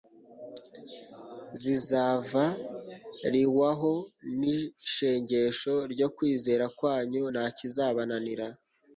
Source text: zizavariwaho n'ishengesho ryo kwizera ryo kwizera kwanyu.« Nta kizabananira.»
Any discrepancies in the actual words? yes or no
yes